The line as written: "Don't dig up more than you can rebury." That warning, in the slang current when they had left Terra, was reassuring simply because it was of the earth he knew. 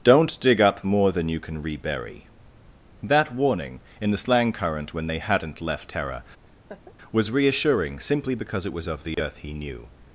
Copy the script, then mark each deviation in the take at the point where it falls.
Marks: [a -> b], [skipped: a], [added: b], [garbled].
"Don't dig up more than you can rebury." That warning, in the slang current when they [had -> hadn't] left Terra, was reassuring simply because it was of the earth he knew.